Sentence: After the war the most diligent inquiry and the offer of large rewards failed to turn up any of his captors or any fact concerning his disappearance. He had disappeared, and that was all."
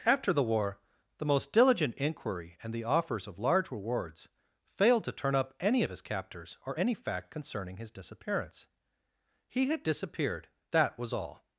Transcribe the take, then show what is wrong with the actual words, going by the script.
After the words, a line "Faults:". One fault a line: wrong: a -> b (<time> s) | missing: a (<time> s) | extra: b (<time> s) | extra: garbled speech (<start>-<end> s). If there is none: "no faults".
After the war the most diligent inquiry and the offers of large rewards failed to turn up any of his captors or any fact concerning his disappearance. He had disappeared, that was all."
Faults:
wrong: offer -> offers (2.8 s)
missing: and (10.5 s)